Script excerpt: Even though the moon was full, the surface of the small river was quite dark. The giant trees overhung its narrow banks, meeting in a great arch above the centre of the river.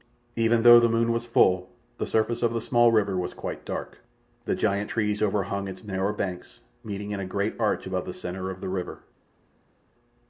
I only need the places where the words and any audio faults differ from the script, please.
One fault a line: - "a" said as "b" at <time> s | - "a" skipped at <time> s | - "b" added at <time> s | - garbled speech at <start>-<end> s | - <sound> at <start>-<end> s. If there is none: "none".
none